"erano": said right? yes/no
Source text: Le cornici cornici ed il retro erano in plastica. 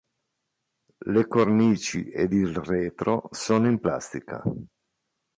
no